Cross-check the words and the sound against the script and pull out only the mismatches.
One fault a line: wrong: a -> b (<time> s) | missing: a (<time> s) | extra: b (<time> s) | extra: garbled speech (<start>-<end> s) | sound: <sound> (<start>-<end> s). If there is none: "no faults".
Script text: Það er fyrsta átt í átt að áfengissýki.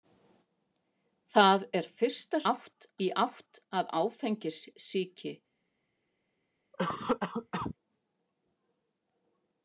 sound: cough (6.7-7.7 s)